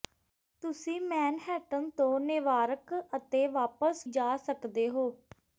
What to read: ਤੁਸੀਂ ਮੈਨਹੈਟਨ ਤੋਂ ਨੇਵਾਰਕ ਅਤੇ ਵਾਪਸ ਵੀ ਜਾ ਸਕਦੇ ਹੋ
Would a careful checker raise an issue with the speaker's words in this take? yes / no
yes